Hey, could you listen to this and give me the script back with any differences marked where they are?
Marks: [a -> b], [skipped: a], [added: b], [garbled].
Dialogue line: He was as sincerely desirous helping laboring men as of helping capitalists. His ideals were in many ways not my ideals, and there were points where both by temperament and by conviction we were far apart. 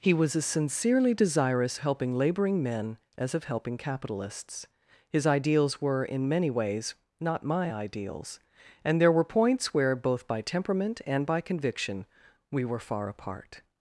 He was as sincerely desirous helping laboring men as of helping capitalists. His ideals were in many ways not my ideals, and there were points where both by temperament and by conviction we were far apart.